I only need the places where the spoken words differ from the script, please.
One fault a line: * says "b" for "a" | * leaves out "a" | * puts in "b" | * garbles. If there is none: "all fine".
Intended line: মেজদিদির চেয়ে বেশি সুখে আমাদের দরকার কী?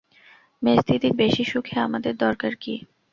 * leaves out "চেয়ে"